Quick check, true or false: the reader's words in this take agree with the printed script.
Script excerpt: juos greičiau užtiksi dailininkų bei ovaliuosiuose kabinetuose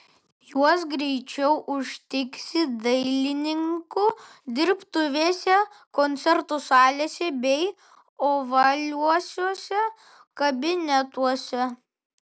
false